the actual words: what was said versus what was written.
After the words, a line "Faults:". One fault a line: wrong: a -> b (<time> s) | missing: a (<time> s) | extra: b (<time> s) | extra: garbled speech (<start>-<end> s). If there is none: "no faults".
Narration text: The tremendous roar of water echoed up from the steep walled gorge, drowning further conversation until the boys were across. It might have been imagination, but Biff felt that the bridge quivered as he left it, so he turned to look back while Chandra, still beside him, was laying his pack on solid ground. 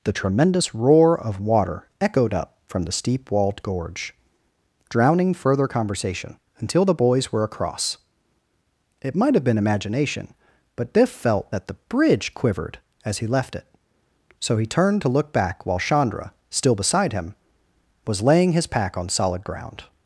The tremendous roar of water echoed up from the steep walled gorge, drowning further conversation until the boys were across. It might have been imagination, but Biff felt that the bridge quivered as he left it, so he turned to look back while Chandra, still beside him, was laying his pack on solid ground.
Faults:
no faults